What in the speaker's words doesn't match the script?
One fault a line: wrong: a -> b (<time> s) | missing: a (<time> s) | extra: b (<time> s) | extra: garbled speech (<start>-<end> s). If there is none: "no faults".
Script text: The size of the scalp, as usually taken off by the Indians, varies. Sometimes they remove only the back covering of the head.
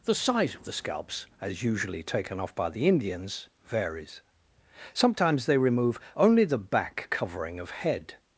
wrong: scalp -> scalps (0.7 s)
missing: the (7.7 s)